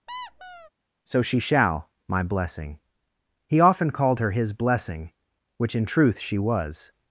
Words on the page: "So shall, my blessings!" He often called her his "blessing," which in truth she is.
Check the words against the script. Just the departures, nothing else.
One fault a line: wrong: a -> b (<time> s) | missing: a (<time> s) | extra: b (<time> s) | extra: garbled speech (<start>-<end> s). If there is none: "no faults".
extra: she (1.2 s)
wrong: blessings -> blessing (2.2 s)
wrong: is -> was (6.4 s)